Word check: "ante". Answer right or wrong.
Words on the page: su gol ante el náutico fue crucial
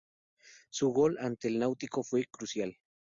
right